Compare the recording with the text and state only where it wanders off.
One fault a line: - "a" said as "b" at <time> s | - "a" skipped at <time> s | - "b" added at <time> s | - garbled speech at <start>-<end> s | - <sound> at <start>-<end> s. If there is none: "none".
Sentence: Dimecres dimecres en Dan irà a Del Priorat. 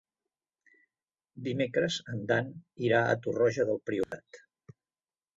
- "dimecres" skipped at 2.0 s
- "Torroja" added at 3.3 s
- dropout at 4.0-4.1 s